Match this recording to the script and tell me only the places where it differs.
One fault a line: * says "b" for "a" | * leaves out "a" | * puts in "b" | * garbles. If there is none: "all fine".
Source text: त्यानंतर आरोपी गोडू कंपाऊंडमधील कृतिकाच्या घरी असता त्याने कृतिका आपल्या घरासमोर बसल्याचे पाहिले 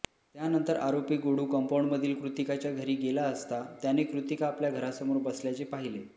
* puts in "गेला"